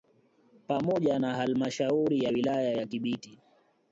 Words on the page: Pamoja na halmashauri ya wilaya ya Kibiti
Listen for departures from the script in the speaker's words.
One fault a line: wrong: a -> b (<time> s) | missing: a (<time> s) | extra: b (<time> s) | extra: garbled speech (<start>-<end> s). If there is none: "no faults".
no faults